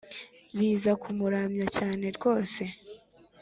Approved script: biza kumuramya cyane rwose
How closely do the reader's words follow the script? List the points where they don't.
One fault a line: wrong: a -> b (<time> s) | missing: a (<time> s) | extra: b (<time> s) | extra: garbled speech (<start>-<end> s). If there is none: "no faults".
no faults